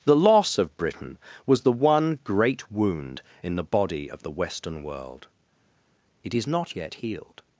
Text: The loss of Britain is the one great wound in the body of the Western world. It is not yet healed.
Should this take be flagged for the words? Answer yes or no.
yes